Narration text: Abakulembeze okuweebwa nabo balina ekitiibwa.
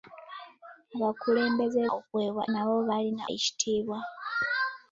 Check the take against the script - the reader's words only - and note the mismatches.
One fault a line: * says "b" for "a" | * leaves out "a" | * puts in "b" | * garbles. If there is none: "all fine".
all fine